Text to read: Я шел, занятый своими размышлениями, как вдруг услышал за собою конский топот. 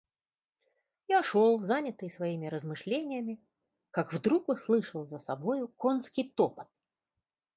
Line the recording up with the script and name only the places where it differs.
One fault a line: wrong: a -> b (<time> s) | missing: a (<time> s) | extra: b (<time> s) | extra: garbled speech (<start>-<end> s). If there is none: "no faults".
no faults